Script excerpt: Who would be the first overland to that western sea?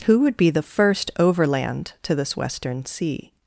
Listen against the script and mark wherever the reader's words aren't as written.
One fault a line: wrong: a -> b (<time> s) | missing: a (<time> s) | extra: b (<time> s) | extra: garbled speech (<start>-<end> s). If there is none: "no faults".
wrong: that -> this (2.1 s)